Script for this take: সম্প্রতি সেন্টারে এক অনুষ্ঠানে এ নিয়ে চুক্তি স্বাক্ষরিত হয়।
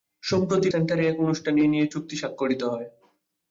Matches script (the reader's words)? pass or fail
pass